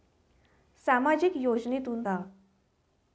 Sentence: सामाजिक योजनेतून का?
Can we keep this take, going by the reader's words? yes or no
yes